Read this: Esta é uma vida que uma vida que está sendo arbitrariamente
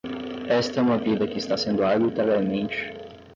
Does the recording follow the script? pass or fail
fail